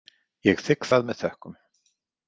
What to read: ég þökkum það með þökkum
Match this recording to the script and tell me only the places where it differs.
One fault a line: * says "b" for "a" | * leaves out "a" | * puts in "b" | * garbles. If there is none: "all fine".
* says "þigg" for "þökkum"